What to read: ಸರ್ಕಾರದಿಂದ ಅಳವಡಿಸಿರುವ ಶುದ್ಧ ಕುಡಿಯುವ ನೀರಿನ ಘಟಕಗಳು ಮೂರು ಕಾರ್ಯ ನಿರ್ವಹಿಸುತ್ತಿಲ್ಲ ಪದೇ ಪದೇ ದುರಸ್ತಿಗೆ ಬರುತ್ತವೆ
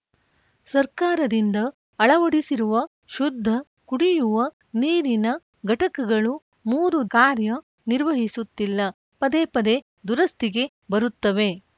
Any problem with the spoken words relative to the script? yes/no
no